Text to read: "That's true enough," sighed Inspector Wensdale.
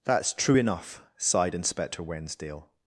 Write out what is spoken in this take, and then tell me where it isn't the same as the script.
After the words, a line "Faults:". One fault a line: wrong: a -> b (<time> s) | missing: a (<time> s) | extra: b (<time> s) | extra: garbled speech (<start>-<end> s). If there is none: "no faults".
"That's true enough," sighed Inspector Wensdale.
Faults:
no faults